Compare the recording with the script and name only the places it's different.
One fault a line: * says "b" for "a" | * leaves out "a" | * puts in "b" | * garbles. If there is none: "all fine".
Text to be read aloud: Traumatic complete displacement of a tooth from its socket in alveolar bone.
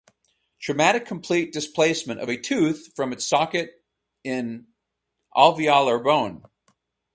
all fine